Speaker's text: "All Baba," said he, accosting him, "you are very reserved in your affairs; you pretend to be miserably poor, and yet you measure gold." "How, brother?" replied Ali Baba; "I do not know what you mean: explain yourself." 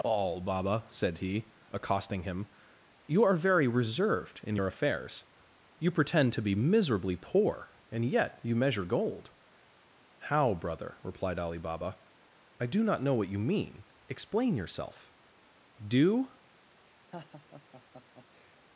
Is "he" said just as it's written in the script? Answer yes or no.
yes